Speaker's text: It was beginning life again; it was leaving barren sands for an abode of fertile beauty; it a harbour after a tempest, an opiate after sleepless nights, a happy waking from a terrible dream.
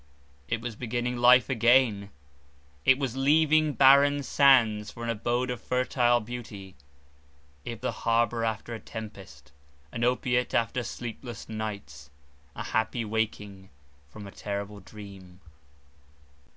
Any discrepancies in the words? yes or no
no